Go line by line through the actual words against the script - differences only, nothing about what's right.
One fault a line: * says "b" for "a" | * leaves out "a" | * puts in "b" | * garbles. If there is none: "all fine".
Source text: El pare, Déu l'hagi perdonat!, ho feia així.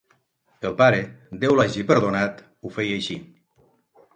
all fine